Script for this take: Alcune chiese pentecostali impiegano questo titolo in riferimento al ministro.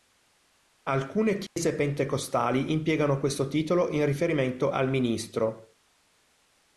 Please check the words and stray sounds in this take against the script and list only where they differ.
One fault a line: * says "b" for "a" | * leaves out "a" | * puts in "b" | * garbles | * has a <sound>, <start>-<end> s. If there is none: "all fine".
* has a dropout, 1.5-1.6 s